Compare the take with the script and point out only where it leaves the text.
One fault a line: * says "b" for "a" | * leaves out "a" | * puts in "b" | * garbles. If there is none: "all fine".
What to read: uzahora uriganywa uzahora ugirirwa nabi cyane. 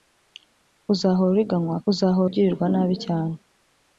all fine